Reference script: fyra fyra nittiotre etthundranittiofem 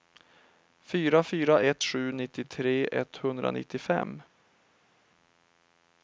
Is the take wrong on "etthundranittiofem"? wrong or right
right